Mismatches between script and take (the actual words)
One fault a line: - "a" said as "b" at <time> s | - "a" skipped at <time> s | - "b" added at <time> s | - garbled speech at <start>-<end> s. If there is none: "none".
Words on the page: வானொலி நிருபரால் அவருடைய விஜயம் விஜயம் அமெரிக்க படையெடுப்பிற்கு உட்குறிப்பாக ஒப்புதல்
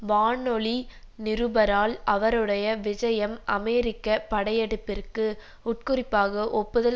- "விஜயம்" skipped at 3.4 s